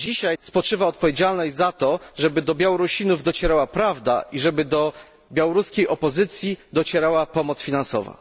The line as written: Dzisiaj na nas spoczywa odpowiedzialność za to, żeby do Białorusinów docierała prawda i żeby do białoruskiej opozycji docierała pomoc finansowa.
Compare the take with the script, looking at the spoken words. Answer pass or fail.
fail